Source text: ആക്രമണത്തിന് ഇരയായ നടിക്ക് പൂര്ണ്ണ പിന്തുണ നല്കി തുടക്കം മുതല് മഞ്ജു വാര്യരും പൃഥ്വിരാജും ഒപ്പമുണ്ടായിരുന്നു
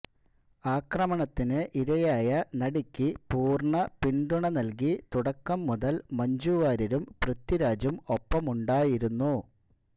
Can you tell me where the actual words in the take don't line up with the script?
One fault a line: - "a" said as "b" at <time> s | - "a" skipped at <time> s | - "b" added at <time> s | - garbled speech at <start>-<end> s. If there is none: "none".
none